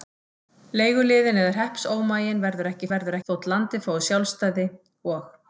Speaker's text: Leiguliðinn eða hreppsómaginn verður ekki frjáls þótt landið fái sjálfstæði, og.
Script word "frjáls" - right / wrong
wrong